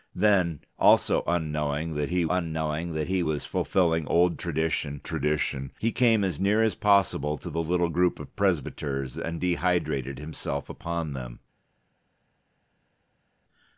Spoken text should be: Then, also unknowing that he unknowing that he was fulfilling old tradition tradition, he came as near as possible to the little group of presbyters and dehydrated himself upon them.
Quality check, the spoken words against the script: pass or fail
pass